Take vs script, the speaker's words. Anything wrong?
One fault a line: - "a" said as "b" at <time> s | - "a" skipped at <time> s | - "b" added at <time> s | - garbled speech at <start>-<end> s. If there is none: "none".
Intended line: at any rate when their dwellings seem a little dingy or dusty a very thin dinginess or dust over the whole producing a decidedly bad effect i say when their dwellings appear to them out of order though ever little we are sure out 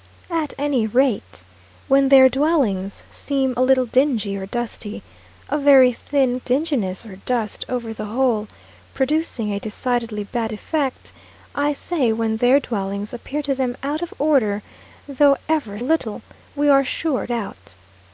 none